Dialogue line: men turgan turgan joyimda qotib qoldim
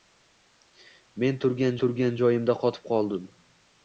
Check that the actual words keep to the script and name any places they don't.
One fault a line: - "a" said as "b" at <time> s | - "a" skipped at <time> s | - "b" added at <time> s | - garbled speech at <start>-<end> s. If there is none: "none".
none